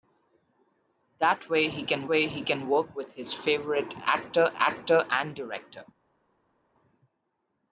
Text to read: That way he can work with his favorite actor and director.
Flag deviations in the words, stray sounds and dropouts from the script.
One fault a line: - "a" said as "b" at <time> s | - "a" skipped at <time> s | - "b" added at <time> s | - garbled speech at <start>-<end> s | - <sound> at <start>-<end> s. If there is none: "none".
- "way he can" added at 2.1 s
- "actor" added at 4.5 s